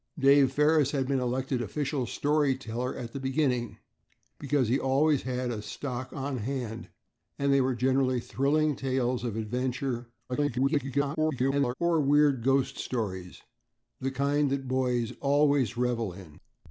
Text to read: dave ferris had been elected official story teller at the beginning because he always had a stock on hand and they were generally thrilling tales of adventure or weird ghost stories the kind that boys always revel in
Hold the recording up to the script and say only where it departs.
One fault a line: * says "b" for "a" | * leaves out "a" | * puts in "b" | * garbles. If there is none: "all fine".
* garbles